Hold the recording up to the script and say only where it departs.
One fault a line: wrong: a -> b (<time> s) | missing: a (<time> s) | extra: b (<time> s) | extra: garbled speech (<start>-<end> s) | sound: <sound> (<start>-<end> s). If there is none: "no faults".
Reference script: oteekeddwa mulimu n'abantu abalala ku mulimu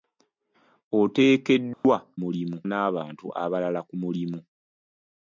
sound: dropout (1.7-1.8 s)